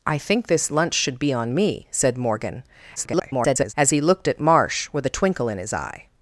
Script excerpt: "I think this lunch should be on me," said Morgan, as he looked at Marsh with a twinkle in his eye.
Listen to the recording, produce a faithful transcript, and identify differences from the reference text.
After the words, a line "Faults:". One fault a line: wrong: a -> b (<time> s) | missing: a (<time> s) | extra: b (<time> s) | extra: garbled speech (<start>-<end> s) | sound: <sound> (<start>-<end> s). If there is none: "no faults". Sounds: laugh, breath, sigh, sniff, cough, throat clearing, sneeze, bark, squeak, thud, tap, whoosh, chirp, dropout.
"I think this lunch should be on me," said Morgan, [garbled] as he looked at Marsh with a twinkle in his eye.
Faults:
extra: garbled speech (3.0-3.7 s)